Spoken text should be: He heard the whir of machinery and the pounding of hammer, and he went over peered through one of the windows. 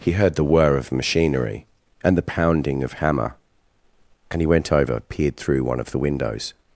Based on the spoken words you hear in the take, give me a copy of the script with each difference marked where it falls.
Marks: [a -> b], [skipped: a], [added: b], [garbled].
He heard the whir of machinery and the pounding of hammer, and he went over peered through one of the windows.